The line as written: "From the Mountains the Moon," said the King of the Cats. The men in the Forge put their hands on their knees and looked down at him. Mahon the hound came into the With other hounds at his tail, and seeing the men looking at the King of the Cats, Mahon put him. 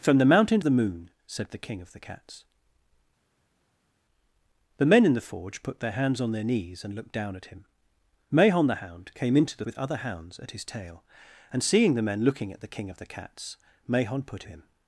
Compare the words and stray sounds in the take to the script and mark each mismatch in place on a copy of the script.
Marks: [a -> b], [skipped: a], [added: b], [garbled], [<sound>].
"From the Mountains the Moon," said the King of the Cats. The men in the Forge put their hands on their knees and looked down at him. Mahon the hound came into the With other hounds at his tail, and seeing the men looking at the King of the Cats, Mahon put him.